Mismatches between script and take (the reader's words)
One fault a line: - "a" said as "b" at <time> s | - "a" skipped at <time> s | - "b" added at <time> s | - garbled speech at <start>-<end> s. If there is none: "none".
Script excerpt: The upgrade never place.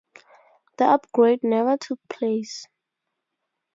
- "took" added at 1.8 s